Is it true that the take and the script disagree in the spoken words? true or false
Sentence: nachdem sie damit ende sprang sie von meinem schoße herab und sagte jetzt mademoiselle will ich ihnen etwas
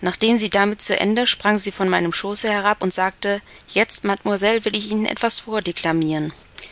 true